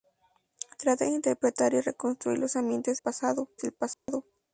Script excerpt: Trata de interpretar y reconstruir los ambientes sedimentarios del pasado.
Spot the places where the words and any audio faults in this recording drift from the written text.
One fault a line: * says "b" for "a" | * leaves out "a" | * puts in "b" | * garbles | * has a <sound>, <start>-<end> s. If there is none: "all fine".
* says "pasado" for "sedimentarios"
* has a dropout, 3.9-4.1 s